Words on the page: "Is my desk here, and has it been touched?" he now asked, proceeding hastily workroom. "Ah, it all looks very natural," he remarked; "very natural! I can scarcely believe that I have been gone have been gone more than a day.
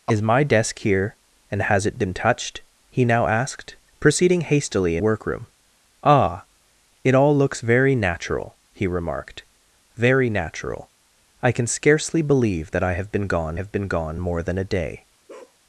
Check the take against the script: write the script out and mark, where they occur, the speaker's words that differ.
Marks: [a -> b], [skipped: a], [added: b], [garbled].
"Is my desk here, and has it been touched?" he now asked, proceeding hastily workroom. "Ah, it all looks very natural," he remarked; "very natural! I can scarcely believe that I have been gone have been gone more than a day.